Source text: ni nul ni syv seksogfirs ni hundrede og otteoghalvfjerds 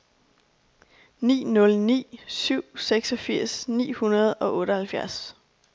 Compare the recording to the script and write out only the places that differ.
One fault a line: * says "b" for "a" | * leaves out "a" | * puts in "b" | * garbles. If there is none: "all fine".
all fine